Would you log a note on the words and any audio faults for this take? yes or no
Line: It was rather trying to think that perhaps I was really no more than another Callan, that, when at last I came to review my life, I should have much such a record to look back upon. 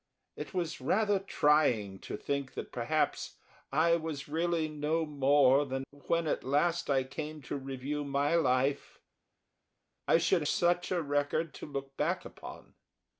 yes